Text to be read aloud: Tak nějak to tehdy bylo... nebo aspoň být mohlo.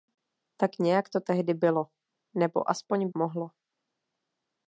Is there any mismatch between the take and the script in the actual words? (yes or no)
yes